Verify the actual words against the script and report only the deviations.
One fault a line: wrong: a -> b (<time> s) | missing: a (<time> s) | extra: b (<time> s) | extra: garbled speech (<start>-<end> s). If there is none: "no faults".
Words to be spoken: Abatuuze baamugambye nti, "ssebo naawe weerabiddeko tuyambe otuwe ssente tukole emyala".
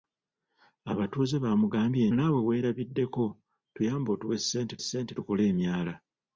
missing: nti ssebo (2.0 s)
extra: ssente (4.8 s)